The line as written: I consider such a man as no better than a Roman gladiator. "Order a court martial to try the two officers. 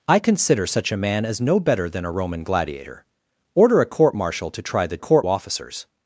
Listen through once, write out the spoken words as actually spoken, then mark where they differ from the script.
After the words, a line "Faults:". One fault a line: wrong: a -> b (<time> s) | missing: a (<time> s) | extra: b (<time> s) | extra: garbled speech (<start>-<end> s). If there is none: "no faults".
I consider such a man as no better than a Roman gladiator. "Order a court martial to try the court officers.
Faults:
wrong: two -> court (5.0 s)